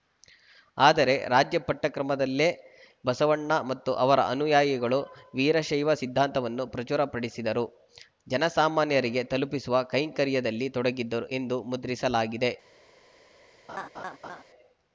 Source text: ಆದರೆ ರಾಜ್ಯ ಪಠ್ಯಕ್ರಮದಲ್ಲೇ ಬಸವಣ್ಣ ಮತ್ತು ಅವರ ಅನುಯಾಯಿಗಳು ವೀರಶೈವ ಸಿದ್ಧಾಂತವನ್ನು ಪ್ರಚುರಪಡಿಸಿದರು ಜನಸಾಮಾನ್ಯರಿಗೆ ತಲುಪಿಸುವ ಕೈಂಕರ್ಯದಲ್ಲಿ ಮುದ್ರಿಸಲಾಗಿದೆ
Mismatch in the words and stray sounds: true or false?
true